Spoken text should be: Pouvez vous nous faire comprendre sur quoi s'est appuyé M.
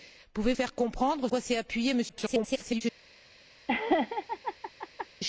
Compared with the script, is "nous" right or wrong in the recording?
wrong